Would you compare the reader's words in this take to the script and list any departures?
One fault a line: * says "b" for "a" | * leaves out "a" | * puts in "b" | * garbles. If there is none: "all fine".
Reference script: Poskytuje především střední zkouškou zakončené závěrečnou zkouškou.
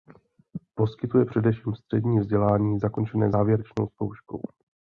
* says "vzdělání" for "zkouškou"